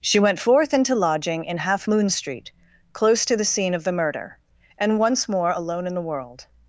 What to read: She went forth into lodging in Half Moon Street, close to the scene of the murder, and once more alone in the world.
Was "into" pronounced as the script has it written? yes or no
yes